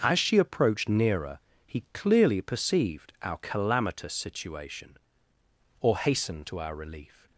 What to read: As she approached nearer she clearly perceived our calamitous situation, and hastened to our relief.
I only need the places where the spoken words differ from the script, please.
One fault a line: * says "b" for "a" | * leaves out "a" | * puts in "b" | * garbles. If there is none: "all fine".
* says "he" for "she"
* says "or" for "and"